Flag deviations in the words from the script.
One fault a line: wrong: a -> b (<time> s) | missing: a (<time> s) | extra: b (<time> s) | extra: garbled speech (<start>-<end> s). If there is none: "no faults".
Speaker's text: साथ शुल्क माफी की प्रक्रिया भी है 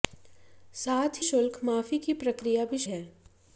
no faults